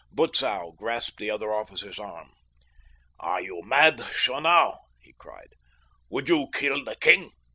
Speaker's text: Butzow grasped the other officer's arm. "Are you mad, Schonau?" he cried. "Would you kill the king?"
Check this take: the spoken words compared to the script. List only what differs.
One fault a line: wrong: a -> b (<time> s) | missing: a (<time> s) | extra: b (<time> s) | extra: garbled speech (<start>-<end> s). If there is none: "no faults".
no faults